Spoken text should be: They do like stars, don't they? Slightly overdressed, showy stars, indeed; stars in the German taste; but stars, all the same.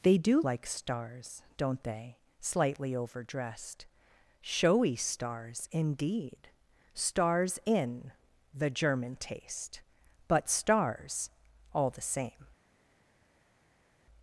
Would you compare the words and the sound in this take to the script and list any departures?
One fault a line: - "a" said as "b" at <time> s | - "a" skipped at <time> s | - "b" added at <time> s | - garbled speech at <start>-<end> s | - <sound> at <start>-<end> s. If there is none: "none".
none